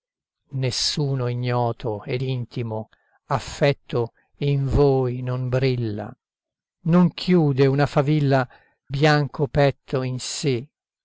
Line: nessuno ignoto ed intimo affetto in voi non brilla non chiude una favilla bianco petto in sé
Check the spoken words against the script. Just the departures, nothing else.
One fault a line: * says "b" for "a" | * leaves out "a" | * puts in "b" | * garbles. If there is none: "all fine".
all fine